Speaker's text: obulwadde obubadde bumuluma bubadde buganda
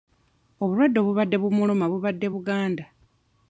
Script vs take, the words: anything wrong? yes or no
no